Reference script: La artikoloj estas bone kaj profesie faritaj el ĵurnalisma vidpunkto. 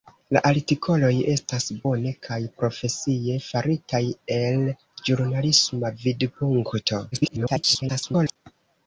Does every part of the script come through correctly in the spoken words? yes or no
no